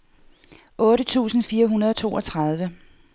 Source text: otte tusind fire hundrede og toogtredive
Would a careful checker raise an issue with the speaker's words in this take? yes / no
no